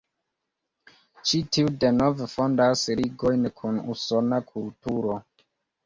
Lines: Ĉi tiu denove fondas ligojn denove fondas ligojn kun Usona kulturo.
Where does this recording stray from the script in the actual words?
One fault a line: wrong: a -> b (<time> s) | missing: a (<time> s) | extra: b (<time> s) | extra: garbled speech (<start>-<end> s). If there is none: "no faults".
missing: denove fondas ligojn (3.5 s)